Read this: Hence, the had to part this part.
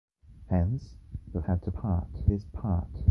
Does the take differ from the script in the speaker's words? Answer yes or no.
no